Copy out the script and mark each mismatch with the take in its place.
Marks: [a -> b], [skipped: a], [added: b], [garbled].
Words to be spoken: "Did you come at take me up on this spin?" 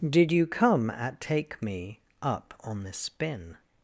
"Did you come at take me up on this spin?"